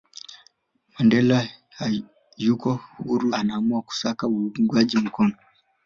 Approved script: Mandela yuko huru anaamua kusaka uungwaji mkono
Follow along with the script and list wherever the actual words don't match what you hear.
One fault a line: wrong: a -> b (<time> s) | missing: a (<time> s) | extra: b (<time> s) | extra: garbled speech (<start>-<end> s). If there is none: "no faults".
no faults